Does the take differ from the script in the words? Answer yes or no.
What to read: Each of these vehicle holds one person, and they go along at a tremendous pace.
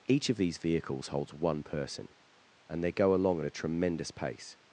yes